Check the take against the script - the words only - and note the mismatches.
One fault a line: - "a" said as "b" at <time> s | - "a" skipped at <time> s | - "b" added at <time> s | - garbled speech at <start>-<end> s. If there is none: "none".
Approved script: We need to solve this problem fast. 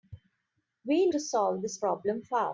- "need" skipped at 1.1 s